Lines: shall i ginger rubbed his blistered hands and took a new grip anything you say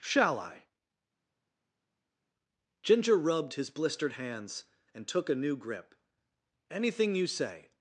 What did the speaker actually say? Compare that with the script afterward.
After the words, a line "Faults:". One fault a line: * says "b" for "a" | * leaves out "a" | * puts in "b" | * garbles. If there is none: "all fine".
shall i ginger rubbed his blistered hands and took a new grip anything you say
Faults:
all fine